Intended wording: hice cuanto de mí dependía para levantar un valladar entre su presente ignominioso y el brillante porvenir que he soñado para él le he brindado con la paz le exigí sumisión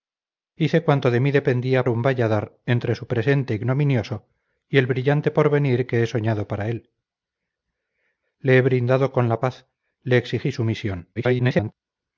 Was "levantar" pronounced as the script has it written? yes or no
no